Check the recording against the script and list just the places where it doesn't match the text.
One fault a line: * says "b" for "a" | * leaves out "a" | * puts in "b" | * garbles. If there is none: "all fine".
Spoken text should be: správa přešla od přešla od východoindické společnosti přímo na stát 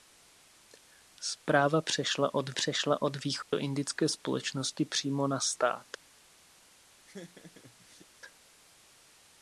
all fine